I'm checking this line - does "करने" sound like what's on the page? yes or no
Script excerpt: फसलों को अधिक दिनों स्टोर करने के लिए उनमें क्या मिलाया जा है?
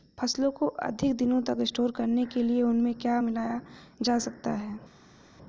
yes